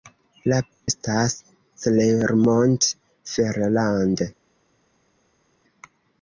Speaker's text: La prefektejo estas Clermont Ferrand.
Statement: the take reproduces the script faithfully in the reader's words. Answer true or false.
false